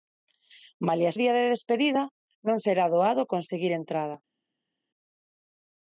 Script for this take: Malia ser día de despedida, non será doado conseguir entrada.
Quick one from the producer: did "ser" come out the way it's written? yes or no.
no